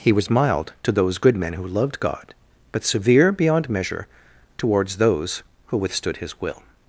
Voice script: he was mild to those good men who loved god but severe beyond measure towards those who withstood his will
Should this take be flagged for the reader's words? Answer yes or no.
no